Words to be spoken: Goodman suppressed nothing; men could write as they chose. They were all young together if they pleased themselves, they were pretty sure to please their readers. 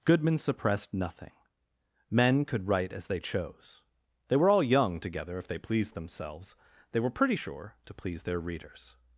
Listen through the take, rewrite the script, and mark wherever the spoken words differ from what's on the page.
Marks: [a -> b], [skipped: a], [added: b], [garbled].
Goodman suppressed nothing; men could write as they chose. They were all young together if they pleased themselves, they were pretty sure to please their readers.